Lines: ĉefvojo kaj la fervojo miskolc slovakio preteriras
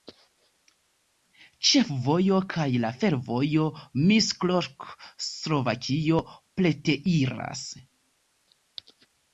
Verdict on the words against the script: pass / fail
pass